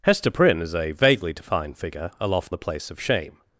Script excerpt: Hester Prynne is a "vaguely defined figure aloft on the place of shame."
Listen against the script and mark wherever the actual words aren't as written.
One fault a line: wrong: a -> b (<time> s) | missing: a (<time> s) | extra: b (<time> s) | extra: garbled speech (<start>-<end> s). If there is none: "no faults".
missing: on (2.5 s)